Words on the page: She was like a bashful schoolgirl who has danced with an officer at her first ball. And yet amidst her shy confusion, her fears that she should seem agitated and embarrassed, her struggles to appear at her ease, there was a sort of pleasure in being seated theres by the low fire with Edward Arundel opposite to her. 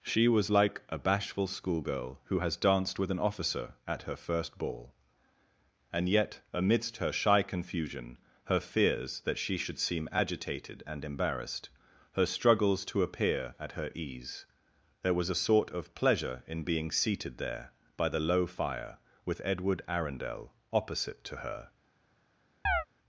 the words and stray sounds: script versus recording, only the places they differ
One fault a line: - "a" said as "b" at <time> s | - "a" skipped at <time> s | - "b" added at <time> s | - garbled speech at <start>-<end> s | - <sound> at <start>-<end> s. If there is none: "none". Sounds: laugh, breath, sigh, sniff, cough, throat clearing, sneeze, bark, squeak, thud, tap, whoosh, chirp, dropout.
- "theres" said as "there" at 17.4 s
- chirp at 22.7-22.9 s